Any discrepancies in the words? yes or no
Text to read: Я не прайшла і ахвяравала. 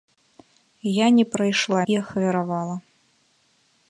no